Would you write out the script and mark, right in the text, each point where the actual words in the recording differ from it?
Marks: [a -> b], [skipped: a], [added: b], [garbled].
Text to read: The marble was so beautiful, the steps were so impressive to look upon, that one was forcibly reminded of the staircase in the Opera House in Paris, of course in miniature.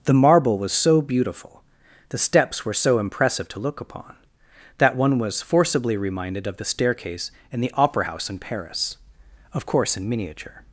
The marble was so beautiful, the steps were so impressive to look upon, that one was forcibly reminded of the staircase in the Opera House in Paris, of course in miniature.